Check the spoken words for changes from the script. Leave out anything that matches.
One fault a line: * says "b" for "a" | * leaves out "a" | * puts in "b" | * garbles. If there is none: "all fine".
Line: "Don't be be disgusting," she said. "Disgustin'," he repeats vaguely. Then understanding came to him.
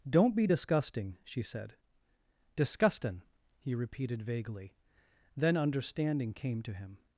* leaves out "be"
* says "repeated" for "repeats"